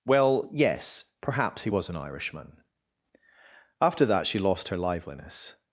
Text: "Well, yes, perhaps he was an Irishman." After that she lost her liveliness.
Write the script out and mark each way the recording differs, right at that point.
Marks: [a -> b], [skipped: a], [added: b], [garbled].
"Well, yes, perhaps he was an Irishman." After that she lost her liveliness.